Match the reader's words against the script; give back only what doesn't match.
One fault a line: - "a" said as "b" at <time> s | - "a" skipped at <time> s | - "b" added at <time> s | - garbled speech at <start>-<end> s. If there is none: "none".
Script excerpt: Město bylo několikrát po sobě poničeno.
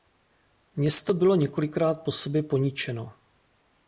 none